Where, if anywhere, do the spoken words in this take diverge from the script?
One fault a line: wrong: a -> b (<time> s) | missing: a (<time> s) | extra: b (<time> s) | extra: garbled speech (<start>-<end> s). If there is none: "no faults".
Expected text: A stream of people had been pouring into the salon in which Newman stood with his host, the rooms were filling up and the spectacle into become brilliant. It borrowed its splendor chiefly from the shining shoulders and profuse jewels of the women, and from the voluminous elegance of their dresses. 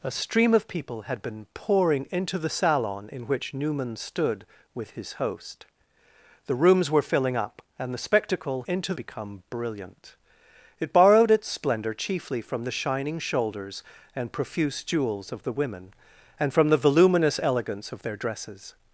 no faults